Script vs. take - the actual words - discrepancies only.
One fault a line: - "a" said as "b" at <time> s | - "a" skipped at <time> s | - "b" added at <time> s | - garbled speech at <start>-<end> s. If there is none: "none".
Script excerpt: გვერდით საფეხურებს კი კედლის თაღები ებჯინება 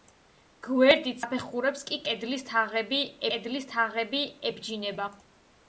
- "კედლის თაღები" added at 3.3 s